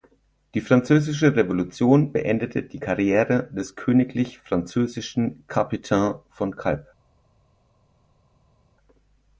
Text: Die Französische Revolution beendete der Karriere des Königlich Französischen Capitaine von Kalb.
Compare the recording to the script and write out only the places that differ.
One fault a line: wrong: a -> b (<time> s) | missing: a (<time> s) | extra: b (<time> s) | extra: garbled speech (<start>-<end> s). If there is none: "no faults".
wrong: der -> die (2.6 s)